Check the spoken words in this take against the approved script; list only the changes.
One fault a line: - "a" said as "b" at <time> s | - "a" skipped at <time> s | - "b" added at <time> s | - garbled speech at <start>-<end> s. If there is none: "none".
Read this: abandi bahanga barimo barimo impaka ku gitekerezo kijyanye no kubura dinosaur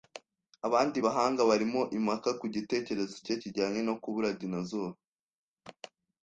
- "barimo" skipped at 1.8 s
- "cye" added at 3.2 s